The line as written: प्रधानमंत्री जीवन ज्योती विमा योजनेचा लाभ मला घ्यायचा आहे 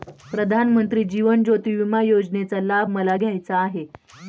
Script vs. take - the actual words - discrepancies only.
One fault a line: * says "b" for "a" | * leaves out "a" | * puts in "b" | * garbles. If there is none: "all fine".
all fine